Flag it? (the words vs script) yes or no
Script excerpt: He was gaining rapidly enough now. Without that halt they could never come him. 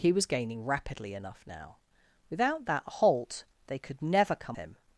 no